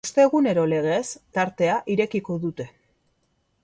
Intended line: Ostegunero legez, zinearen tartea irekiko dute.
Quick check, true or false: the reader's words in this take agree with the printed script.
false